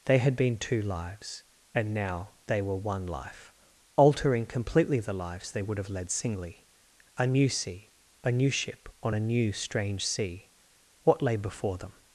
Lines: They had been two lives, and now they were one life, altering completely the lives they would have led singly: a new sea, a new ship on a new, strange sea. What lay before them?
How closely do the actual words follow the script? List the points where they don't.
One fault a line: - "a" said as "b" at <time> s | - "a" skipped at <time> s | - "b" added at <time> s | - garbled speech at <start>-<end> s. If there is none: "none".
none